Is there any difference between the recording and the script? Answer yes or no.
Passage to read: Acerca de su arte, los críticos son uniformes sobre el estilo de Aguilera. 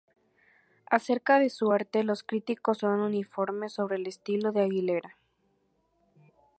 no